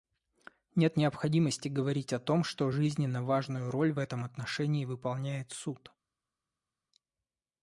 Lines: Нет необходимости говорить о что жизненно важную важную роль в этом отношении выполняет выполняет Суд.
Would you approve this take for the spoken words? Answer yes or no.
no